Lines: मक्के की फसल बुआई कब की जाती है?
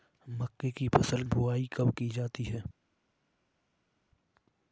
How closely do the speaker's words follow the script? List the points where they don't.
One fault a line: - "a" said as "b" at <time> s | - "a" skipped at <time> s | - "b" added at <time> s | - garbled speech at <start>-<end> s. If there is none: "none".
none